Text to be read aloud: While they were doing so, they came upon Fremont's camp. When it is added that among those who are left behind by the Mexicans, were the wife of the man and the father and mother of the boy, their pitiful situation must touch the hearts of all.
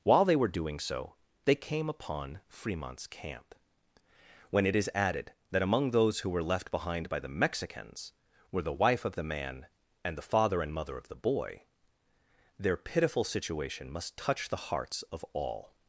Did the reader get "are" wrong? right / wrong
wrong